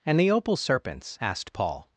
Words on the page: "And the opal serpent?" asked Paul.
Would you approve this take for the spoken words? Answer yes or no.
no